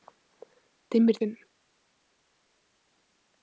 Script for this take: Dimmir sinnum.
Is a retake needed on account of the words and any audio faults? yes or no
no